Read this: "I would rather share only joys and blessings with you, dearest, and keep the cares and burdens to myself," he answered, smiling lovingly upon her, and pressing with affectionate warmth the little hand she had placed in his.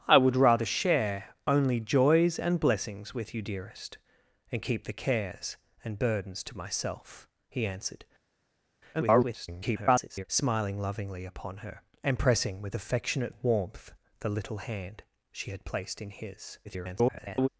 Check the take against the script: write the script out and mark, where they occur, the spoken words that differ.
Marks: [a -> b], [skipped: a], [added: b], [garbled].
"I would rather share only joys and blessings with you, dearest, and keep the cares and burdens to myself," he answered, [garbled] smiling lovingly upon her, and pressing with affectionate warmth the little hand she had placed in his. [garbled]